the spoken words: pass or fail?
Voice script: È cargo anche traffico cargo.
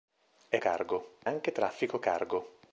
pass